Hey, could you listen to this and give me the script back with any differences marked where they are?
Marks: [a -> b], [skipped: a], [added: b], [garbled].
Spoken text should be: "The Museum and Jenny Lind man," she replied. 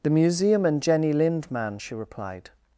"The Museum and Jenny Lind man," she replied.